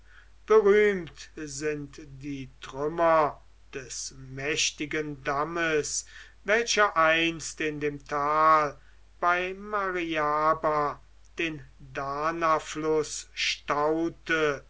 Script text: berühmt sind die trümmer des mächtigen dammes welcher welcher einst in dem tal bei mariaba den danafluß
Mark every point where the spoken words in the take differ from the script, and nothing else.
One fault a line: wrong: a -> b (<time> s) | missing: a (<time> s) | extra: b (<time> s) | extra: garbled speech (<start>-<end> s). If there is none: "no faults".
missing: welcher (7.0 s)